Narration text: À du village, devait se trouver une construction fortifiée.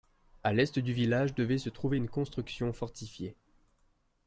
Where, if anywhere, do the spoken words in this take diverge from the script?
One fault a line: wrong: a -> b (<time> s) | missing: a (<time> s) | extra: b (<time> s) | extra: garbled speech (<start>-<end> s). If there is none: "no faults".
extra: l'est (0.5 s)